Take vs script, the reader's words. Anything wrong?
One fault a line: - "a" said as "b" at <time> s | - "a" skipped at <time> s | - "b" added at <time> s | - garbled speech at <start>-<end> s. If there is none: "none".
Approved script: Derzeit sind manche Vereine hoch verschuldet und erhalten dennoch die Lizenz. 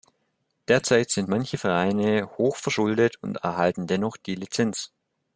none